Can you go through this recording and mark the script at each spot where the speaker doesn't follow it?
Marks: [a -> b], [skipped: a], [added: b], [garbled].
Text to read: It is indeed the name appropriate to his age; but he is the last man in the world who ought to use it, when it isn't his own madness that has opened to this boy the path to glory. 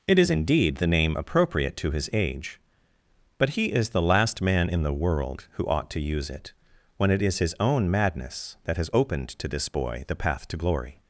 It is indeed the name appropriate to his age; but he is the last man in the world who ought to use it, when it [isn't -> is] his own madness that has opened to this boy the path to glory.